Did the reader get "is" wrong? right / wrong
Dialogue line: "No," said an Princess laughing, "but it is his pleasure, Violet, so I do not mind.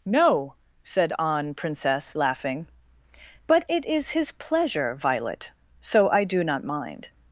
right